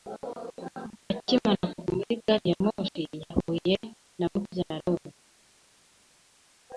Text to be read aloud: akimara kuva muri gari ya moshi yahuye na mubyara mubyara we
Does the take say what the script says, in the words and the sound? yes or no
no